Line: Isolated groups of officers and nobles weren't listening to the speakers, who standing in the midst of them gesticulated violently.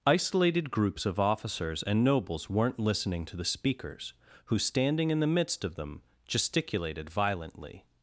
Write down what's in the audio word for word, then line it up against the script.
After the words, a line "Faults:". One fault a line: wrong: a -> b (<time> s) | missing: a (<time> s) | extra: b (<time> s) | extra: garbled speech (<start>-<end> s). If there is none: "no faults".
Isolated groups of officers and nobles weren't listening to the speakers, who standing in the midst of them gesticulated violently.
Faults:
no faults